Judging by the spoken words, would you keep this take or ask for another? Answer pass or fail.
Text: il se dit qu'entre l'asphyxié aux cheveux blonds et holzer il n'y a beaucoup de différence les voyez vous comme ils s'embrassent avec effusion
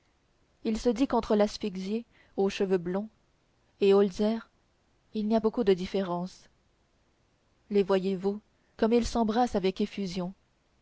pass